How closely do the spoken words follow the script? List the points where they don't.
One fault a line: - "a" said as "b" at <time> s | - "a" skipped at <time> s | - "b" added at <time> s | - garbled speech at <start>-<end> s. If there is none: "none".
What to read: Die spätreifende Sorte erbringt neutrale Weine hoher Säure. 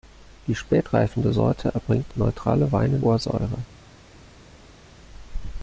none